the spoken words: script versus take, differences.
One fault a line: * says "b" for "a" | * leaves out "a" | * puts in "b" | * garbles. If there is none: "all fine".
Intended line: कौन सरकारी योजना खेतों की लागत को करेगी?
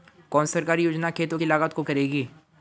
all fine